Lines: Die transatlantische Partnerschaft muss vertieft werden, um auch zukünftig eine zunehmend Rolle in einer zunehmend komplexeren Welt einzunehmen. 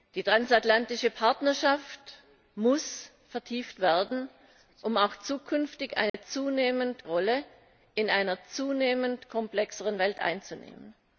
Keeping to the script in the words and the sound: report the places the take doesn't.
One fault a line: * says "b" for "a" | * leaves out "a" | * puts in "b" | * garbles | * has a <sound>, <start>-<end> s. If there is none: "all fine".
* has a dropout, 6.1-6.1 s